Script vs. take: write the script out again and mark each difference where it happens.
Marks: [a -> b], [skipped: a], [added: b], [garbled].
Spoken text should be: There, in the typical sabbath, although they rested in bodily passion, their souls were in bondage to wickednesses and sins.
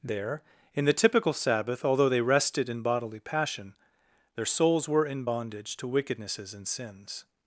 There, in the typical sabbath, although they rested in bodily passion, their souls were in bondage to wickednesses and sins.